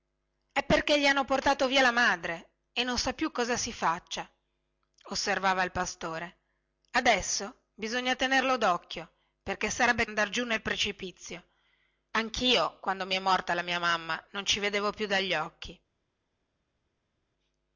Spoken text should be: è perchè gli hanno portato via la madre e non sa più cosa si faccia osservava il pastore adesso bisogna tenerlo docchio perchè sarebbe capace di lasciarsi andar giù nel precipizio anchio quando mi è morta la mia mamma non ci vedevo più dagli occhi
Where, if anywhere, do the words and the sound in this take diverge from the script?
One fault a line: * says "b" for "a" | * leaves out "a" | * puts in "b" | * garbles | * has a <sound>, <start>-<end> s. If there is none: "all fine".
* leaves out "capace di lasciarsi"